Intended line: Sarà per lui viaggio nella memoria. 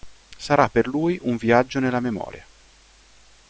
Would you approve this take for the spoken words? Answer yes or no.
no